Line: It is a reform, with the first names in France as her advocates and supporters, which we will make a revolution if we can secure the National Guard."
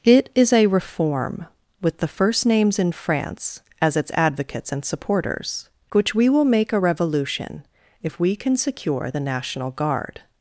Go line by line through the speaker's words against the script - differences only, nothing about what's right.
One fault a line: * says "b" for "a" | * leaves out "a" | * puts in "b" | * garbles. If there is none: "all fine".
* says "its" for "her"